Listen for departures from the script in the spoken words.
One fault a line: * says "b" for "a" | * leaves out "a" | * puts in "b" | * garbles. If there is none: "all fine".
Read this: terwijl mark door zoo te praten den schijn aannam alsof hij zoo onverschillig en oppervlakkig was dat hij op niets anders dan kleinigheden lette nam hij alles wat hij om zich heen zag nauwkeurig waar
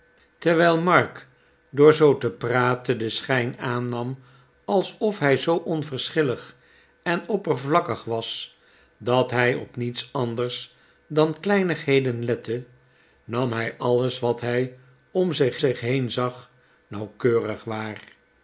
* puts in "zich"